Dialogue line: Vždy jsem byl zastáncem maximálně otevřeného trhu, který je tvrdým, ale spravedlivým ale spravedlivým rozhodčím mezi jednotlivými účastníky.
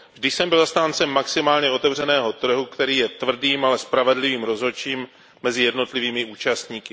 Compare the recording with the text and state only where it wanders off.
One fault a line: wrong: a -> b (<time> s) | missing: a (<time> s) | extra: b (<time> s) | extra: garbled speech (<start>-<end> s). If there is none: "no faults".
missing: ale spravedlivým (4.4 s)